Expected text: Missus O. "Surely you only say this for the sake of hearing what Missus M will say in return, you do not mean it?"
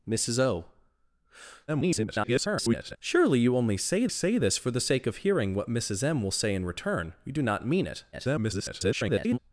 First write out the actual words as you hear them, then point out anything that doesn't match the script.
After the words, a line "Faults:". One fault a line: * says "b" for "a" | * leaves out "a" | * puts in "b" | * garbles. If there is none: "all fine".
Missus O. [garbled] "Surely you only say say this for the sake of hearing what Missus M will say in return, you do not mean it?" [garbled]
Faults:
* garbles
* puts in "say"
* garbles